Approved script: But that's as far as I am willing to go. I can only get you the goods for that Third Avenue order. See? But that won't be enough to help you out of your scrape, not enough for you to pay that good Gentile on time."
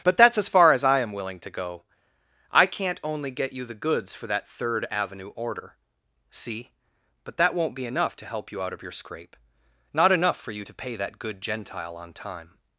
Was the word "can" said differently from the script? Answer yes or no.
yes